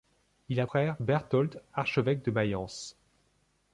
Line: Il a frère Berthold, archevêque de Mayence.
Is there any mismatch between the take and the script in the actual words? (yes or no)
no